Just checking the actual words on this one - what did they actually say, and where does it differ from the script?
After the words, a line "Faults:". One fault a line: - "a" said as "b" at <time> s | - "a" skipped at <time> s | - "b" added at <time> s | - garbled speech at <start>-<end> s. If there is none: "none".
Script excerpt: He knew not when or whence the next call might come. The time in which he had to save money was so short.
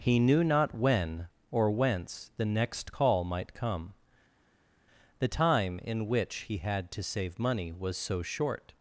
He knew not when or whence the next call might come. The time in which he had to save money was so short.
Faults:
none